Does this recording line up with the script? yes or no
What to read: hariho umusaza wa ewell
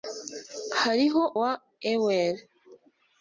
no